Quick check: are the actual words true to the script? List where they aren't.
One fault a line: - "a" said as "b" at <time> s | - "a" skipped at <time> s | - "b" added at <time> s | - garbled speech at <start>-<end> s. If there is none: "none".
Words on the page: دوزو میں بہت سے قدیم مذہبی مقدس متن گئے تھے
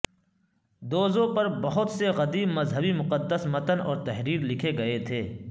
- "میں" said as "پر" at 1.4 s
- "اور تحریر لکھے" added at 3.8 s